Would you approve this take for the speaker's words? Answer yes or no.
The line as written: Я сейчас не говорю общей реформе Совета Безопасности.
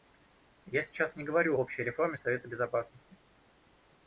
yes